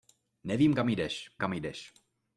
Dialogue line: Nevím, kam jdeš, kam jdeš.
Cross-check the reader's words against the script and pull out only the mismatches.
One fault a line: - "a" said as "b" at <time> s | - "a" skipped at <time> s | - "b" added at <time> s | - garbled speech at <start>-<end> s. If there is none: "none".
none